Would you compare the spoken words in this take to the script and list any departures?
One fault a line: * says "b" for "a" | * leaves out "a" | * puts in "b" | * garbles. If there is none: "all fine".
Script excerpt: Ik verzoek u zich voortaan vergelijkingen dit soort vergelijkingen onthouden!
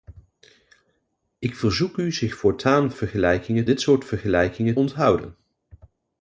all fine